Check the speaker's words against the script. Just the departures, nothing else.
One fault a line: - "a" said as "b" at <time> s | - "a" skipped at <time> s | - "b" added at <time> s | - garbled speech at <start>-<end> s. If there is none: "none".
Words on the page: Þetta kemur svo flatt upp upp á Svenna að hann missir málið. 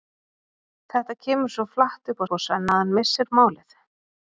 none